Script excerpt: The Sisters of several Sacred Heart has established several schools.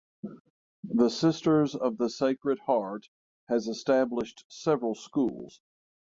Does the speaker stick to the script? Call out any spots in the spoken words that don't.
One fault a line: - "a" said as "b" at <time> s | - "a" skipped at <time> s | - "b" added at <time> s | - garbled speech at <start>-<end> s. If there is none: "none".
- "several" said as "the" at 2.0 s